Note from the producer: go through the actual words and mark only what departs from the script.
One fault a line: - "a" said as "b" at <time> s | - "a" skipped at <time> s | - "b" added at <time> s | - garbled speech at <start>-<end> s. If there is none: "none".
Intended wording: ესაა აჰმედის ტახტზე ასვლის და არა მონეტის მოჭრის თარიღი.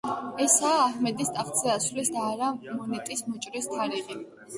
none